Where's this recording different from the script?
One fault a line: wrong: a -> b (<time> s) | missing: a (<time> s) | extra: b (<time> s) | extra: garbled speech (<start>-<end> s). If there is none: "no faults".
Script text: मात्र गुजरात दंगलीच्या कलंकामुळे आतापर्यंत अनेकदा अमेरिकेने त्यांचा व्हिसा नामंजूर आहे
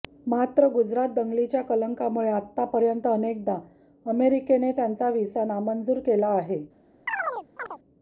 extra: केला (6.0 s)